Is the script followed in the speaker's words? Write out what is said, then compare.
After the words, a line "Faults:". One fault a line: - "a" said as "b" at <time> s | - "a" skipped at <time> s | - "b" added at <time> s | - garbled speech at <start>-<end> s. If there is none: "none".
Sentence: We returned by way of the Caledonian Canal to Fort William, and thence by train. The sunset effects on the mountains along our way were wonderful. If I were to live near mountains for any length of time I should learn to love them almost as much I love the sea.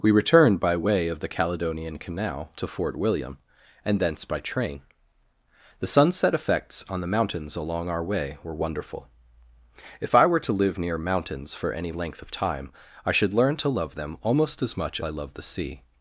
We returned by way of the Caledonian Canal to Fort William, and thence by train. The sunset effects on the mountains along our way were wonderful. If I were to live near mountains for any length of time I should learn to love them almost as much I love the sea.
Faults:
none